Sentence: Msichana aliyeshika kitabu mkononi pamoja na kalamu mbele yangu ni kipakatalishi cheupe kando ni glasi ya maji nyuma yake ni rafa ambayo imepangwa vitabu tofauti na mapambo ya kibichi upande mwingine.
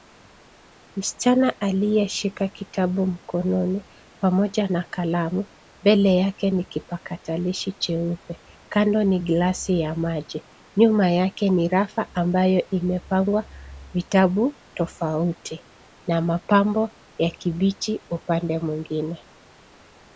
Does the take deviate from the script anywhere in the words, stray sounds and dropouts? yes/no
yes